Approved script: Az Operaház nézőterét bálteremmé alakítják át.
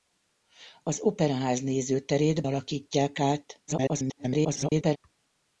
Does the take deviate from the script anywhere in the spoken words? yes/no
yes